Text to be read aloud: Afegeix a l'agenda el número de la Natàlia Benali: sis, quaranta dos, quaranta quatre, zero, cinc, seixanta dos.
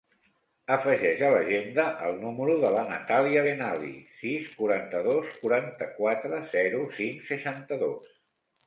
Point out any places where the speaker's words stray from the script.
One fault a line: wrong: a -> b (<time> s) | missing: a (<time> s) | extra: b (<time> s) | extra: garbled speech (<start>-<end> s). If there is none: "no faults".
no faults